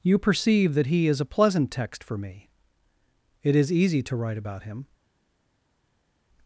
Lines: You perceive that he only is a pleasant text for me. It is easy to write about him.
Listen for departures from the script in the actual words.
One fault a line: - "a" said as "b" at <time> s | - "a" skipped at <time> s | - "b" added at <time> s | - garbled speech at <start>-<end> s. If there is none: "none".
- "only" skipped at 1.1 s